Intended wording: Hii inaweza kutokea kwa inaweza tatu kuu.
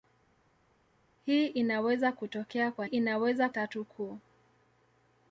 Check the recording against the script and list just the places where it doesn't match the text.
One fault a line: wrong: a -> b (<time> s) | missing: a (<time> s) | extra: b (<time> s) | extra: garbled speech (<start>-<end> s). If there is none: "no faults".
no faults